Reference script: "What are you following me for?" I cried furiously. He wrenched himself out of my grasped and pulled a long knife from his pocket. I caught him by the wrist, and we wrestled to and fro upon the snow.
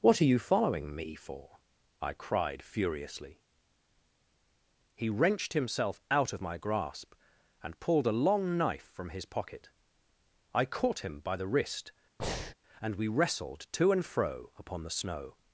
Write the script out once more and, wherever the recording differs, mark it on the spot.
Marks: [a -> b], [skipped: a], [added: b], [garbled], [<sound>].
"What are you following me for?" I cried furiously. He wrenched himself out of my [grasped -> grasp] and pulled a long knife from his pocket. I caught him by the wrist, [breath] and we wrestled to and fro upon the snow.